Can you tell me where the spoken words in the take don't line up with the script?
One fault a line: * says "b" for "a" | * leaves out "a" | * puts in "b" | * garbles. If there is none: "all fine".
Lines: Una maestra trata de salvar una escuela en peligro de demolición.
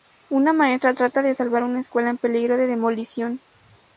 all fine